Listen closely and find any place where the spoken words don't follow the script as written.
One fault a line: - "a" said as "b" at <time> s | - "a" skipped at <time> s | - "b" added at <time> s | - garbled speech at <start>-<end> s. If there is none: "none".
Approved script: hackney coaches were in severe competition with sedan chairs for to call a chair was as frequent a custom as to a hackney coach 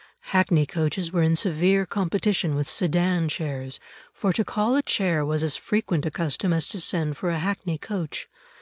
- "send for" added at 6.8 s